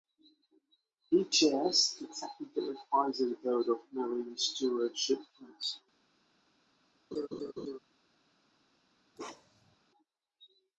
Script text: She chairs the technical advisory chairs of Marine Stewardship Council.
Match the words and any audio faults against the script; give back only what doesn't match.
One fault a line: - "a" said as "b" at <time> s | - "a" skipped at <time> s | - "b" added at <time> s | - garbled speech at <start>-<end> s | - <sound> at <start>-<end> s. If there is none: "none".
- "She" said as "He" at 1.1 s
- "chairs" said as "board" at 3.4 s
- laugh at 7.1-7.8 s
- bark at 9.2-9.8 s